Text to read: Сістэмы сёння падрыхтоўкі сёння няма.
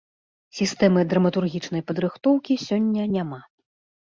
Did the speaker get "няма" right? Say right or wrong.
right